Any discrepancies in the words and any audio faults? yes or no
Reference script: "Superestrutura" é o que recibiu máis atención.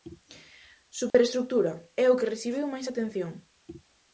yes